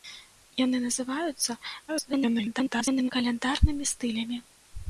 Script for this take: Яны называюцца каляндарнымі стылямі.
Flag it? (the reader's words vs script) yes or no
yes